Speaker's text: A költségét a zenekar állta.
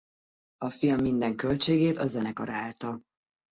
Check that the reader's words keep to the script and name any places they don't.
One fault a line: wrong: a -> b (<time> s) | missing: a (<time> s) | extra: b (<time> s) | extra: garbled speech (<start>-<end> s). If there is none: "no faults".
extra: film minden (0.7 s)